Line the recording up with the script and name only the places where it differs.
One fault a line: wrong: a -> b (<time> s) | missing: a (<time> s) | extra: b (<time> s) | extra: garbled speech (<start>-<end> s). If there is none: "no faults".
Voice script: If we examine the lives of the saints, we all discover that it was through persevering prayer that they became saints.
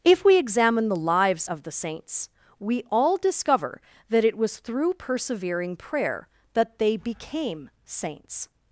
no faults